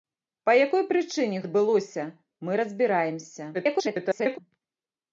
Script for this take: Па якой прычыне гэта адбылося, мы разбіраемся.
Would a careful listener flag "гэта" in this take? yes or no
yes